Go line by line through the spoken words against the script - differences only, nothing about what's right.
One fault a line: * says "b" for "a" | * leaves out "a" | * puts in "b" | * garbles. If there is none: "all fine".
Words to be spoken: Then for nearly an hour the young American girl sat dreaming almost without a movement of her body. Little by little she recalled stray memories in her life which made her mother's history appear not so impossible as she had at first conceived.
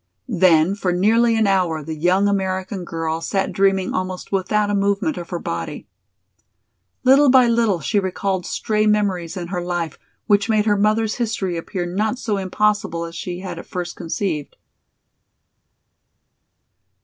all fine